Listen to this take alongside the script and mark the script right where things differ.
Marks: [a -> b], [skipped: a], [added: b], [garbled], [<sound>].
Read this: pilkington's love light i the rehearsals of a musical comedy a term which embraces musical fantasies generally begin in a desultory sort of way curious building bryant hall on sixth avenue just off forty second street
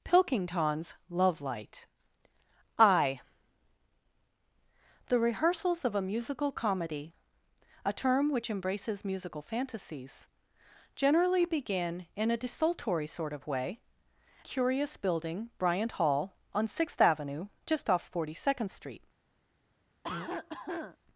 pilkington's love light i the rehearsals of a musical comedy a term which embraces musical fantasies generally begin in a desultory sort of way curious building bryant hall on sixth avenue just off forty second street [cough]